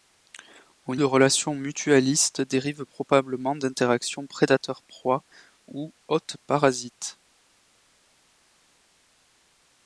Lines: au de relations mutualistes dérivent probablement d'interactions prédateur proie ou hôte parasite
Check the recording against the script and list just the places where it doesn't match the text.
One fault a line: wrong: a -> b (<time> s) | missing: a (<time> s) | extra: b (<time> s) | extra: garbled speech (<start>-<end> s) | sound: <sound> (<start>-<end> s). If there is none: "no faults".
no faults